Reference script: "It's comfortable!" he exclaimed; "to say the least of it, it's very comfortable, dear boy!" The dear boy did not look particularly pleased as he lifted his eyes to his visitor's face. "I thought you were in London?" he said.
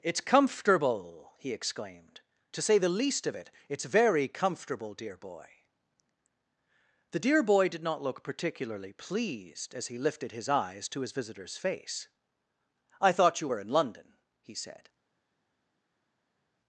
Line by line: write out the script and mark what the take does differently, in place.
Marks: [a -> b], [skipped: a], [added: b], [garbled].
"It's comfortable!" he exclaimed; "to say the least of it, it's very comfortable, dear boy!" The dear boy did not look particularly pleased as he lifted his eyes to his visitor's face. "I thought you were in London?" he said.